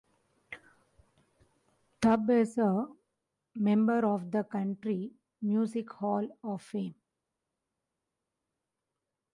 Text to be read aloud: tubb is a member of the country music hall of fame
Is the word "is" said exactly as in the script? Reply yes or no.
yes